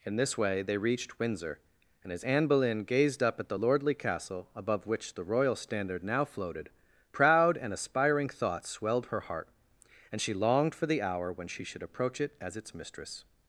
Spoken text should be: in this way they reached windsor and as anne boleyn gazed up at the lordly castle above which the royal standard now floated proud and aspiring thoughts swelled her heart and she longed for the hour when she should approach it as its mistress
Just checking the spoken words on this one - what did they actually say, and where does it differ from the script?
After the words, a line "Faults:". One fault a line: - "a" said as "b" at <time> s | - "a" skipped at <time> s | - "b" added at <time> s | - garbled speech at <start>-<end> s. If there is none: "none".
in this way they reached windsor and as anne boleyn gazed up at the lordly castle above which the royal standard now floated proud and aspiring thoughts swelled her heart and she longed for the hour when she should approach it as its mistress
Faults:
none